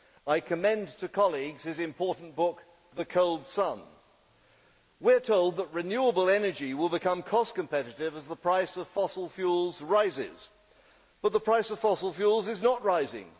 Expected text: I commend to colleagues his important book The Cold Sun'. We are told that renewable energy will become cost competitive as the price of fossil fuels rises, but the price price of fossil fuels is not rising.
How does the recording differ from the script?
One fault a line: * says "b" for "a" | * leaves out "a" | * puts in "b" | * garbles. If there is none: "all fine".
* leaves out "price"